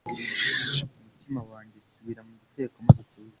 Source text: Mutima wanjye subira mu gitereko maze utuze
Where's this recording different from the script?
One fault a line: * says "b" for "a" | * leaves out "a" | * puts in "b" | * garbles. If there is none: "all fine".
all fine